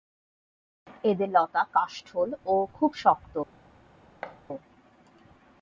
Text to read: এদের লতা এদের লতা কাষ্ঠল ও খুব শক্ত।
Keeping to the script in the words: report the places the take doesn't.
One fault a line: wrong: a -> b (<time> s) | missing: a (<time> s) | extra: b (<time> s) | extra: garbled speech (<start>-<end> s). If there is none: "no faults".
missing: এদের লতা (1.6 s)